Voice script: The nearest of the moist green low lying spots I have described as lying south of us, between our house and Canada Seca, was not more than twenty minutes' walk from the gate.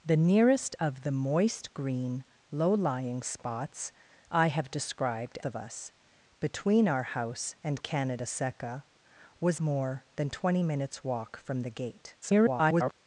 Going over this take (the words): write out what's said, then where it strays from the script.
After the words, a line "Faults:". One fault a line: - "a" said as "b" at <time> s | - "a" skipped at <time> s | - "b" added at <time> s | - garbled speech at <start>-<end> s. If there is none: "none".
The nearest of the moist green low lying spots I have described of us, between our house and Canada Seca, was more than twenty minutes' walk from the gate. [garbled]
Faults:
- "as lying south" skipped at 5.4 s
- "not" skipped at 9.6 s
- garbled speech at 12.2-12.9 s